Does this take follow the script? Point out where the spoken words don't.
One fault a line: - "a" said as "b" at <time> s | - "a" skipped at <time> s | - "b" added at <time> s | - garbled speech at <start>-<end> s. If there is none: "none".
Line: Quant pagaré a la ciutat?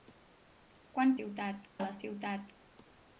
- "pagaré" said as "ciutat" at 1.1 s